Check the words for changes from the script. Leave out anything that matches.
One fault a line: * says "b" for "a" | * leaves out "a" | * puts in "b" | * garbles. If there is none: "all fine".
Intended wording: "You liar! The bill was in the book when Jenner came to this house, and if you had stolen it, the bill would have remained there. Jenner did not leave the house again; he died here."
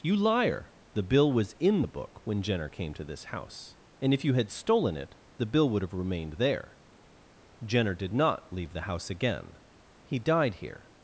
all fine